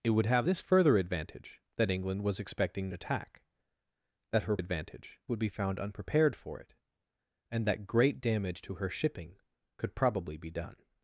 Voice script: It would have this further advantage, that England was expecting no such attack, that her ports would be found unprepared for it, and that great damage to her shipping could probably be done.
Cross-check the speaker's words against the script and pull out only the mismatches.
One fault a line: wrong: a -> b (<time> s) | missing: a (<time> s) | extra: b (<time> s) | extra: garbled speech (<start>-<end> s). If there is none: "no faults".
missing: no such (2.9 s)
wrong: ports -> advantage (4.6 s)